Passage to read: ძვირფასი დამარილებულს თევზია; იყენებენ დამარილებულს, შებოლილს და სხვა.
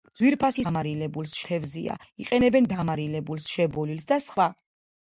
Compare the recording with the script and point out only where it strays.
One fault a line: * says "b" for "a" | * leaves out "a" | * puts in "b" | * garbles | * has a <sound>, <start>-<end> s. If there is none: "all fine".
all fine